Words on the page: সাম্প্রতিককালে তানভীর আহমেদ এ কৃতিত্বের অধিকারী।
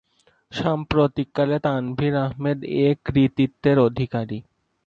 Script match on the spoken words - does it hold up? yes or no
yes